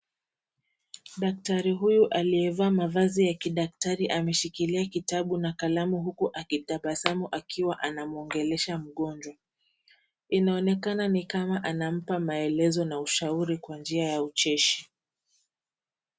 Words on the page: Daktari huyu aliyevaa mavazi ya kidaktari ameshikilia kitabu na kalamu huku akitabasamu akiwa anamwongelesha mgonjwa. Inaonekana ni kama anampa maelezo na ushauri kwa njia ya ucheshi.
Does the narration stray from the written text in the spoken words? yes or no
no